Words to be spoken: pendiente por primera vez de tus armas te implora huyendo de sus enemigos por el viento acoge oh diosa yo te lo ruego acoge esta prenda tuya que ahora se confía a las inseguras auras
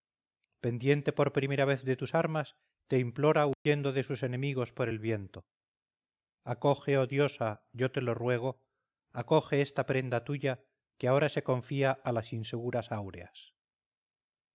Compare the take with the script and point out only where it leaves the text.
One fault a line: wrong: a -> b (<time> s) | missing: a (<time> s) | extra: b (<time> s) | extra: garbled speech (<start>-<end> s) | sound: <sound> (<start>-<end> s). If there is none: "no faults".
sound: dropout (3.5-3.7 s)